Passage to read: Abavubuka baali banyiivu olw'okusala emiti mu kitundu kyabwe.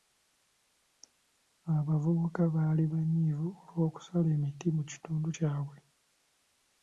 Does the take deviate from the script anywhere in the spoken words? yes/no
no